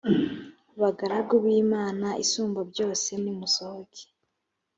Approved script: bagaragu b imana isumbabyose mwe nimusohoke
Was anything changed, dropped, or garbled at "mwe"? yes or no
yes